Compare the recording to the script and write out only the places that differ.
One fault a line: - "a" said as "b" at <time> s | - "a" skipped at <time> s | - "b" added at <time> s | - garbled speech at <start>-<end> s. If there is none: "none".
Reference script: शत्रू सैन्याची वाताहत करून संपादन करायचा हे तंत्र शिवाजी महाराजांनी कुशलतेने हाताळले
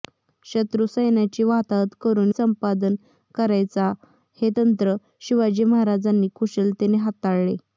none